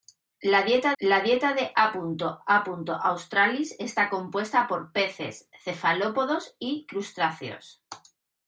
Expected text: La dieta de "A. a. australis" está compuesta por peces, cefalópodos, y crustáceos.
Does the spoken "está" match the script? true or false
true